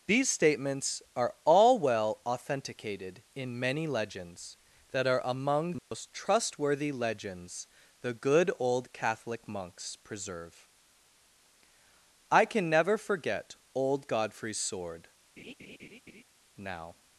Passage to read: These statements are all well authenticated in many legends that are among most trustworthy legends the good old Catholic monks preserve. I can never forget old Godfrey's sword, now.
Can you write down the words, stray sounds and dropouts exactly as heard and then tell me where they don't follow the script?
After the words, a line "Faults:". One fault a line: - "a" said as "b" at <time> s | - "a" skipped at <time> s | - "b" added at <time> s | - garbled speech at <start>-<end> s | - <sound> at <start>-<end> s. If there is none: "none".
These statements are all well authenticated in many legends that are among most trustworthy legends the good old Catholic monks preserve. I can never forget old Godfrey's sword, now.
Faults:
- dropout at 5.8-5.9 s
- laugh at 15.4-16.2 s